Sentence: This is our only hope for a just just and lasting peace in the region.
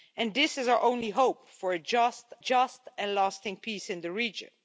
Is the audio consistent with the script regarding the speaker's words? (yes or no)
yes